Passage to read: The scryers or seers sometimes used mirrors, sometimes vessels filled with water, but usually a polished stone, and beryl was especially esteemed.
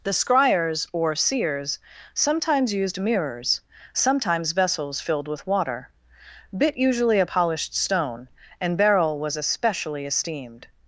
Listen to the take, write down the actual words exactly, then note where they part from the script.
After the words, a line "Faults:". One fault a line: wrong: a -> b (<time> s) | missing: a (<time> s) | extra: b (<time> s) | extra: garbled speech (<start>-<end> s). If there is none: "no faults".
The scryers or seers sometimes used mirrors, sometimes vessels filled with water, bit usually a polished stone, and beryl was especially esteemed.
Faults:
wrong: but -> bit (6.6 s)